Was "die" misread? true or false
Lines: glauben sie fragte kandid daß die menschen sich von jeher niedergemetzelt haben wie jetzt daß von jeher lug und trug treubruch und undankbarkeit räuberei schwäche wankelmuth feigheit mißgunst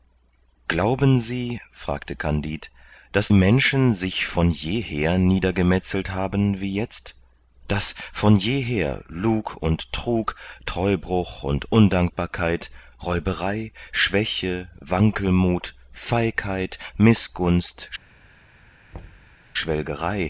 true